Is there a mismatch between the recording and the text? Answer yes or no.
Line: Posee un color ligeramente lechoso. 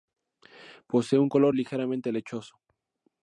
no